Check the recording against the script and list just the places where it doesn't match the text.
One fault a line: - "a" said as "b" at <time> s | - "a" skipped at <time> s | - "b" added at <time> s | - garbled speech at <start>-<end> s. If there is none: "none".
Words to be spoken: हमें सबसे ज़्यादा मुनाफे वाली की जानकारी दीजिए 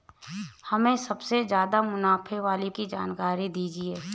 none